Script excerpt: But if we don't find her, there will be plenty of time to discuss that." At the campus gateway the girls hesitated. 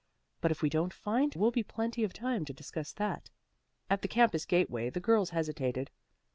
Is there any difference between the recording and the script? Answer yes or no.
yes